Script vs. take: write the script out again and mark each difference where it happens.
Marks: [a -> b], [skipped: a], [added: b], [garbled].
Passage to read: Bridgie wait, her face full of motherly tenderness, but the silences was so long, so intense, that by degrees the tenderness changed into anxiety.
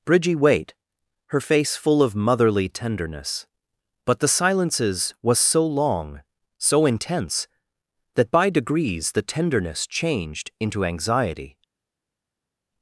Bridgie wait, her face full of motherly tenderness, but the silences was so long, so intense, that by degrees the tenderness changed into anxiety.